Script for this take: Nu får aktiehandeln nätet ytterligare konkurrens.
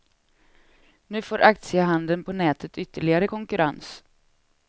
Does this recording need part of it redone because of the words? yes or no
yes